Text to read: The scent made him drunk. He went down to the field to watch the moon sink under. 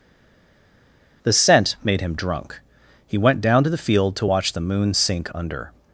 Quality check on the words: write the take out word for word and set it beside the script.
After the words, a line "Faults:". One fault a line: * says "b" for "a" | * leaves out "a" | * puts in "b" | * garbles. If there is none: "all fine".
The scent made him drunk. He went down to the field to watch the moon sink under.
Faults:
all fine